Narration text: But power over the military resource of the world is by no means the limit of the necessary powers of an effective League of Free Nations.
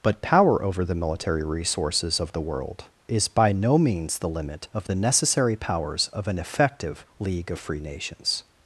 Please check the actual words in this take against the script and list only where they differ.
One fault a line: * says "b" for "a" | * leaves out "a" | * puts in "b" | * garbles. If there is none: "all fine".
* says "resources" for "resource"